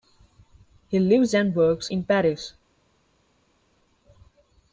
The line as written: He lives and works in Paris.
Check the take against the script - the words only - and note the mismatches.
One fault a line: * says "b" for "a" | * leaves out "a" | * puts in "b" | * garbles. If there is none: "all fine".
all fine